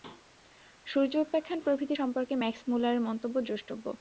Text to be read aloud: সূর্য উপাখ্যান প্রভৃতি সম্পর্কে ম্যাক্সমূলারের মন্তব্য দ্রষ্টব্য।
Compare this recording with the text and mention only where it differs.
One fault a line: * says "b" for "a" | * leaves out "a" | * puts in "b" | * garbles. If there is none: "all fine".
all fine